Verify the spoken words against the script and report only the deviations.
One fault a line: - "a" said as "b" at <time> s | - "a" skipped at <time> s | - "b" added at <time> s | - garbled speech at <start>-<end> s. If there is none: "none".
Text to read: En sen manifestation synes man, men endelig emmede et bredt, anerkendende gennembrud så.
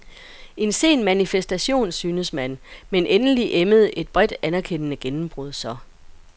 none